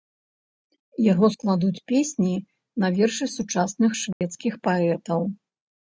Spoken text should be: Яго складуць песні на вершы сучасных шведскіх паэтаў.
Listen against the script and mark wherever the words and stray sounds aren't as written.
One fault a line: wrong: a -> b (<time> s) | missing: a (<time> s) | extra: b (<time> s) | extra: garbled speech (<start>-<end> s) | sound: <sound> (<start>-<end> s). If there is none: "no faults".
sound: dropout (4.1-4.2 s)